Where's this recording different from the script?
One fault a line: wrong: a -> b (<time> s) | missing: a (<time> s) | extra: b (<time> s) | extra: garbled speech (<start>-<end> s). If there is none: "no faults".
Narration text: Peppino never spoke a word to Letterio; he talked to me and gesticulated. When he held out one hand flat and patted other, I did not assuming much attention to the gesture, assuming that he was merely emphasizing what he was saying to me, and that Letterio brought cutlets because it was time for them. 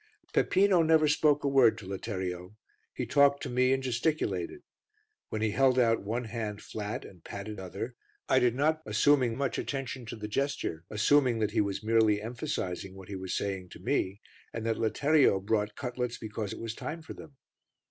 no faults